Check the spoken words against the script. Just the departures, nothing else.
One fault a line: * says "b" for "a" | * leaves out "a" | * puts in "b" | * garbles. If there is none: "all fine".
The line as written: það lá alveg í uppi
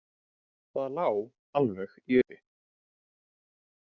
all fine